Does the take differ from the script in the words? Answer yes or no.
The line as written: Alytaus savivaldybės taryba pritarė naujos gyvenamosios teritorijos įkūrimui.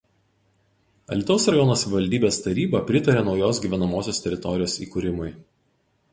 yes